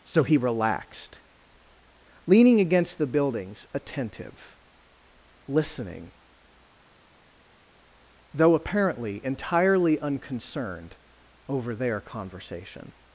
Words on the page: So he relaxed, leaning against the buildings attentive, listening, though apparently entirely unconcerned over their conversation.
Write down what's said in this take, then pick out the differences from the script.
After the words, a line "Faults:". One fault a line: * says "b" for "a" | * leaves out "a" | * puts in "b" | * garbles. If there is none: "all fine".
So he relaxed, leaning against the buildings attentive, listening, though apparently entirely unconcerned over their conversation.
Faults:
all fine